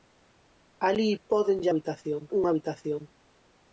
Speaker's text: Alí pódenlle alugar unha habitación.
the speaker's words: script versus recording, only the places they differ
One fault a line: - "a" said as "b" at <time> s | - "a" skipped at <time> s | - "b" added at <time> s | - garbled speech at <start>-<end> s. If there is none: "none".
- "alugar" said as "habitación" at 1.7 s